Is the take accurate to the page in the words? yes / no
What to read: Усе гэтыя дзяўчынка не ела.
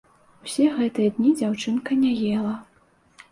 no